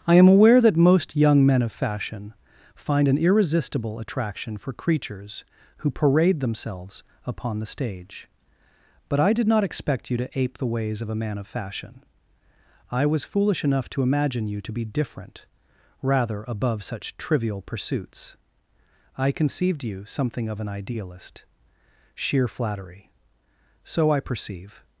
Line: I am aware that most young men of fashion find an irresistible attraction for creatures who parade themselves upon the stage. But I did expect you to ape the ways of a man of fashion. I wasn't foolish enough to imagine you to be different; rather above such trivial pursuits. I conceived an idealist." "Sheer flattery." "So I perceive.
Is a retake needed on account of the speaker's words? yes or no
yes